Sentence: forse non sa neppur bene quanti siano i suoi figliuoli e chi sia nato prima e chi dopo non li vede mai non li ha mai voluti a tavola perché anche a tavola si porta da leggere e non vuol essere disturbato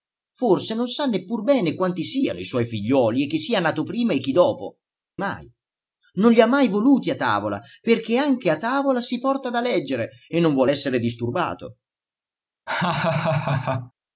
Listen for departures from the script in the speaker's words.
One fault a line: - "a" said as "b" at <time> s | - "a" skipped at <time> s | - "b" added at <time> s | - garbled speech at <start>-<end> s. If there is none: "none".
- "non li vede" skipped at 4.8 s